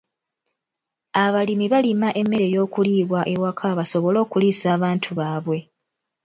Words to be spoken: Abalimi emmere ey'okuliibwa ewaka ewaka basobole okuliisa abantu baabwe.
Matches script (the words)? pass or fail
fail